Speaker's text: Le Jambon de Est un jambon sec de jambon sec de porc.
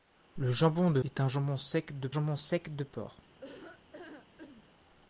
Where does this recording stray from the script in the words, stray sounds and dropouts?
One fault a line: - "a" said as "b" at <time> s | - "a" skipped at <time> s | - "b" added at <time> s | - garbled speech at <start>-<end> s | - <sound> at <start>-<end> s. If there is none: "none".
- laugh at 3.4-4.6 s